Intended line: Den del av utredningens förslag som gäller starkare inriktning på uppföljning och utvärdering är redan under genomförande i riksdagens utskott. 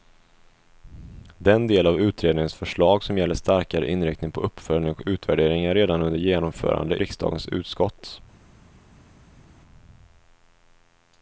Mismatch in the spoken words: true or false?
true